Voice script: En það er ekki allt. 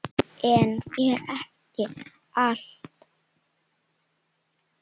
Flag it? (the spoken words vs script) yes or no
yes